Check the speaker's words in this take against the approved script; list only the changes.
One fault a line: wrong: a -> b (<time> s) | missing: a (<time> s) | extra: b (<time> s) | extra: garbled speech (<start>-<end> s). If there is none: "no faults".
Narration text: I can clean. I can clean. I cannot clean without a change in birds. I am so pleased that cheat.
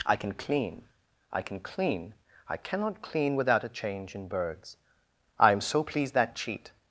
no faults